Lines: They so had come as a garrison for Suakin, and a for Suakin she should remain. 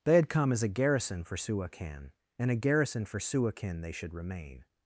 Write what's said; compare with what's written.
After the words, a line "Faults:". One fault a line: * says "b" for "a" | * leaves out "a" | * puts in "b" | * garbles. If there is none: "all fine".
They had come as a garrison for Suakin, and a garrison for Suakin they should remain.
Faults:
* leaves out "so"
* puts in "garrison"
* says "they" for "she"